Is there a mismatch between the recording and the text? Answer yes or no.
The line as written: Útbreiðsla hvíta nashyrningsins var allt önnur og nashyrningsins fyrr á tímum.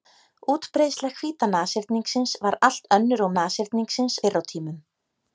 no